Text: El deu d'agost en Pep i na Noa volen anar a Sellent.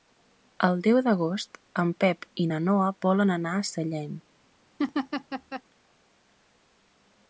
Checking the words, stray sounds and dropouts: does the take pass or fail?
fail